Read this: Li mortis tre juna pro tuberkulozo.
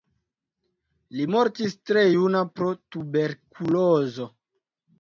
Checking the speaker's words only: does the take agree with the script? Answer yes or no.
yes